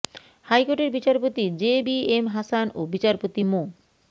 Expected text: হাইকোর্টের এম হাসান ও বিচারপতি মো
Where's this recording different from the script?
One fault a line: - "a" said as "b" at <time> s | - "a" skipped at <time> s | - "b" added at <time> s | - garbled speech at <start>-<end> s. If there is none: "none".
- "বিচারপতি জে বি" added at 0.9 s